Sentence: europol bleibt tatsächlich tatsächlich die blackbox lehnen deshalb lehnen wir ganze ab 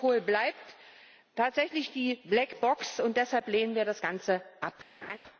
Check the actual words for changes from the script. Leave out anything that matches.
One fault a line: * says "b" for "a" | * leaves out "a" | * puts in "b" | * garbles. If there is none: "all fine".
* leaves out "tatsächlich"
* says "und" for "lehnen"
* puts in "das"